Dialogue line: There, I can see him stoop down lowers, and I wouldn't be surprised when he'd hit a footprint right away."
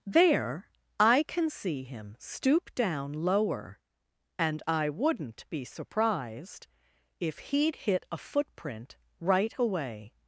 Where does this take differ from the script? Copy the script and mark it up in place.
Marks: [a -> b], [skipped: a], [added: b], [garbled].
There, I can see him stoop down [lowers, -> lower] and I wouldn't be surprised [when -> if] he'd hit a footprint right away."